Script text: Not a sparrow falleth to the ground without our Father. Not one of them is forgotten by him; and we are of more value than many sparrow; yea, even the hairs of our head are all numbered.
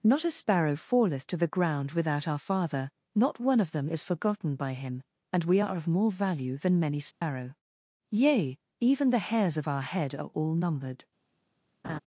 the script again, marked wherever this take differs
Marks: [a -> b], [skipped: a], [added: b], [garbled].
Not a sparrow falleth to the ground without our Father. Not one of them is forgotten by him; and we are of more value than many sparrow; yea, even the hairs of our head are all numbered.